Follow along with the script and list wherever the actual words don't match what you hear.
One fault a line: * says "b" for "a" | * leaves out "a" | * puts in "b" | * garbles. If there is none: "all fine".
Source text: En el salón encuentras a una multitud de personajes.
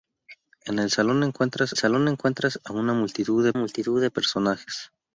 * puts in "salón encuentras"
* puts in "multitud de"